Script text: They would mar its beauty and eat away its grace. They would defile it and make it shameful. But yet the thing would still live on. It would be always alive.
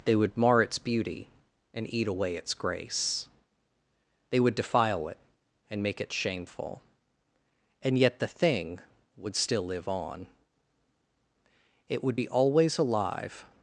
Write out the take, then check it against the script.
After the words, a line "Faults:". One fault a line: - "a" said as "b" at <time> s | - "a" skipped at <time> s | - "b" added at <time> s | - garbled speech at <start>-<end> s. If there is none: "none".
They would mar its beauty and eat away its grace. They would defile it and make it shameful. And yet the thing would still live on. It would be always alive.
Faults:
- "But" said as "And" at 7.8 s